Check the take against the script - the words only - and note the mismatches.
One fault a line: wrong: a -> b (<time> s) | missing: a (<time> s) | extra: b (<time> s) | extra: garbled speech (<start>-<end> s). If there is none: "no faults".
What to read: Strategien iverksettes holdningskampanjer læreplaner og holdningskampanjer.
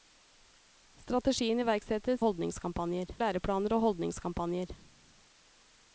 no faults